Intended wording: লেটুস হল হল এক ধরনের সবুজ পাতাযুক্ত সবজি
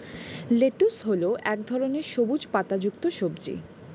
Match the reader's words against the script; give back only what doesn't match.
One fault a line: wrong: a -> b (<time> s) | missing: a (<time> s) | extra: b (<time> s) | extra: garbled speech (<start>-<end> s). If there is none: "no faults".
missing: হল (1.2 s)